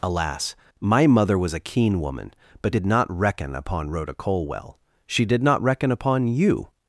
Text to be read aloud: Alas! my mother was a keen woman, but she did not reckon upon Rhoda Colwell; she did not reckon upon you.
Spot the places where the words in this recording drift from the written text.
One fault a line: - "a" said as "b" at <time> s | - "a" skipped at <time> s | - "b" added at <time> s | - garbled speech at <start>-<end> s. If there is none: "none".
- "she" skipped at 2.8 s